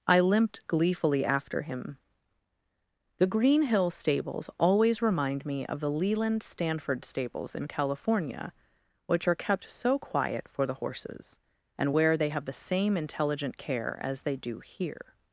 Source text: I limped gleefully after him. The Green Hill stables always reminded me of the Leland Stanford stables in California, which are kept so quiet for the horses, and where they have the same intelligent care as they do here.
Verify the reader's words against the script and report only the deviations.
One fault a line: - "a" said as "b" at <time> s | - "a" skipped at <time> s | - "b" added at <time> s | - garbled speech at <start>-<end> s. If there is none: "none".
- "reminded" said as "remind" at 5.0 s